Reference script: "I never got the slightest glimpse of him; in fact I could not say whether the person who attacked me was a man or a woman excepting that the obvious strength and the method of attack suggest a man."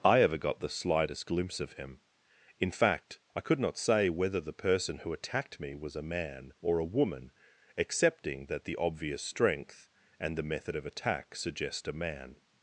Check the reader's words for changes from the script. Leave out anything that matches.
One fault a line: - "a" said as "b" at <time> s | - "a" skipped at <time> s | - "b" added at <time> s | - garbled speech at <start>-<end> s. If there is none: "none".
- "never" said as "ever" at 0.2 s